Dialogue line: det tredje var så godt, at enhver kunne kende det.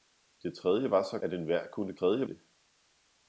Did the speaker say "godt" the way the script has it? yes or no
no